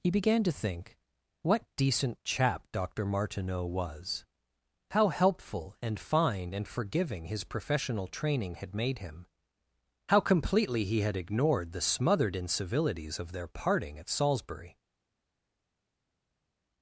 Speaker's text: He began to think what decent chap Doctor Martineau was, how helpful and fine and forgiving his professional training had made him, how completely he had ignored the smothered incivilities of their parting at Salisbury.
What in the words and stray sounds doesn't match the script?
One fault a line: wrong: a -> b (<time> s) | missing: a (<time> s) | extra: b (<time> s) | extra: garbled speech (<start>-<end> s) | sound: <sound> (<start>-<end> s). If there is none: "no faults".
no faults